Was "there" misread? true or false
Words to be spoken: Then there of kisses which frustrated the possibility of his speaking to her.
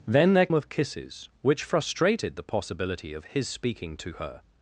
false